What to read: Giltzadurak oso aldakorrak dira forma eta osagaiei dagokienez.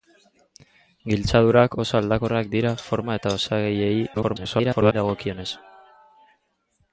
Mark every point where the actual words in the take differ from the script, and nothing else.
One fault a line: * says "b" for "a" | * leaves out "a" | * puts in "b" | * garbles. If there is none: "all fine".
* garbles